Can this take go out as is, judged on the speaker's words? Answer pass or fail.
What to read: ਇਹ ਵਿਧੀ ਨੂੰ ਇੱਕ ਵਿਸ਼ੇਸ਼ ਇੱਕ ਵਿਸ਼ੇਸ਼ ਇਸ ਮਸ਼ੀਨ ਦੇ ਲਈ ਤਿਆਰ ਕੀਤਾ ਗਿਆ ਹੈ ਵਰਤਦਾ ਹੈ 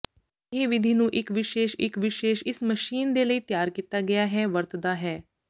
pass